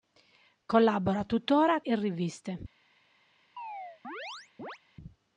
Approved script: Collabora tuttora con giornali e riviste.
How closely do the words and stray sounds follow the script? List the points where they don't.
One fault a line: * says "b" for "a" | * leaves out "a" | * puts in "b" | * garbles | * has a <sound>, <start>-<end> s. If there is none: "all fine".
* leaves out "con giornali"
* has a chirp, 3.6-4.8 s